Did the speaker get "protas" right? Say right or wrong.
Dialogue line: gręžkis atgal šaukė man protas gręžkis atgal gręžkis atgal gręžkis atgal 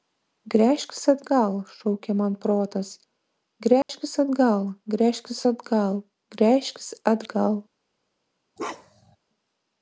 right